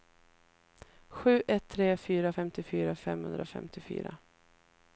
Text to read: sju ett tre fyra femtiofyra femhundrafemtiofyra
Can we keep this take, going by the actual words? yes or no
yes